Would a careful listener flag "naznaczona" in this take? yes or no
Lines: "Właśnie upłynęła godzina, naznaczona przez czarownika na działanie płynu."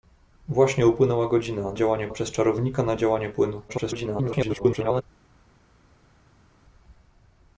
yes